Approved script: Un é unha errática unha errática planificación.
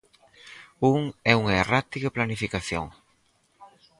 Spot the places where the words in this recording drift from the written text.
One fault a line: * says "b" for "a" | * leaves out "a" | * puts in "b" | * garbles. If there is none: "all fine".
* leaves out "unha errática"